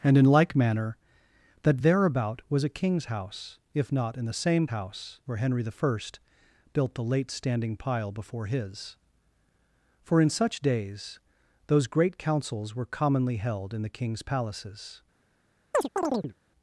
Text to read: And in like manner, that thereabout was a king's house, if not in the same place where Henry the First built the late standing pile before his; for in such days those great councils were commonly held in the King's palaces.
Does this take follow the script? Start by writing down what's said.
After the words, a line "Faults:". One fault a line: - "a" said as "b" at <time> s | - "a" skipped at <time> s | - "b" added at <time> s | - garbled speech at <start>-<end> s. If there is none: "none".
And in like manner, that thereabout was a king's house, if not in the same house where Henry the First built the late standing pile before his; for in such days those great councils were commonly held in the King's palaces.
Faults:
- "place" said as "house" at 4.7 s